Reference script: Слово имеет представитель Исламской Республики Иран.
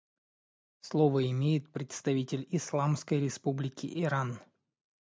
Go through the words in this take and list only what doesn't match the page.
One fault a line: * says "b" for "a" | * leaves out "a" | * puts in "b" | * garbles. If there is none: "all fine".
all fine